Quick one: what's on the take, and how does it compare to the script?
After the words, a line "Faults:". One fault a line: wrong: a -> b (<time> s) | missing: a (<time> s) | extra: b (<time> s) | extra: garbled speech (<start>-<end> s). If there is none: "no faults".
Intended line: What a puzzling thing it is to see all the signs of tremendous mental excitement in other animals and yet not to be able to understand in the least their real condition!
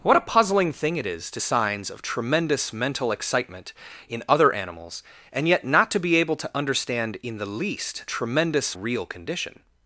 What a puzzling thing it is to signs of tremendous mental excitement in other animals and yet not to be able to understand in the least tremendous real condition!
Faults:
missing: see all the (1.4 s)
wrong: their -> tremendous (8.1 s)